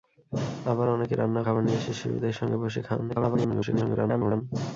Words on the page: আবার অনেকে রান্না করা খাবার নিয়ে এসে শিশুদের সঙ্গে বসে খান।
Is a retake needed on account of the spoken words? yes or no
yes